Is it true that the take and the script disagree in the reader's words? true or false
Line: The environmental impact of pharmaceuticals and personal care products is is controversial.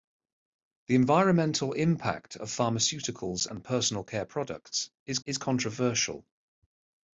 false